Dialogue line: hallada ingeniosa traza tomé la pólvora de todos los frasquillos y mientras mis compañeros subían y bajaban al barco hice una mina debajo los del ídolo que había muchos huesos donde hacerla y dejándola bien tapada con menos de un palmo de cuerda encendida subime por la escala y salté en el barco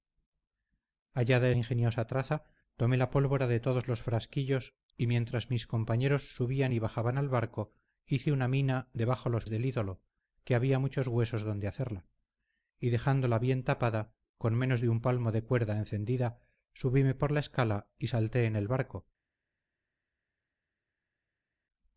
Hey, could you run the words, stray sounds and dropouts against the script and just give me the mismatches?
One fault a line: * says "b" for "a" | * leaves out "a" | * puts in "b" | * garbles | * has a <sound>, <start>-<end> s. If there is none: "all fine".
all fine